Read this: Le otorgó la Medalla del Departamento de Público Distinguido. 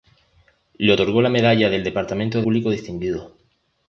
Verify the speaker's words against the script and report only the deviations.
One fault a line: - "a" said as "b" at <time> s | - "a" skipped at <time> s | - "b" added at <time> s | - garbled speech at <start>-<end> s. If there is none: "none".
none